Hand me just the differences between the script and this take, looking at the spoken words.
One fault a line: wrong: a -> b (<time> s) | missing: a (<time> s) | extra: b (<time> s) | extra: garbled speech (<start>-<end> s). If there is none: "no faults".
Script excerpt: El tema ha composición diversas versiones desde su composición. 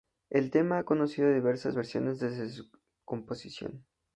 wrong: composición -> conocido (0.9 s)